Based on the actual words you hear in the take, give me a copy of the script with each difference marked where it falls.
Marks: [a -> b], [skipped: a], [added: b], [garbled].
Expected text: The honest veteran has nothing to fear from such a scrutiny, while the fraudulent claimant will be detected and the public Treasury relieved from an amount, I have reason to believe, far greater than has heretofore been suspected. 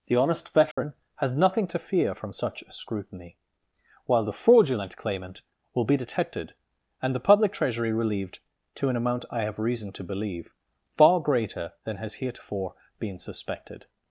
The honest veteran has nothing to fear from such a scrutiny, while the fraudulent claimant will be detected and the public Treasury relieved [from -> to] an amount, I have reason to believe, far greater than has heretofore been suspected.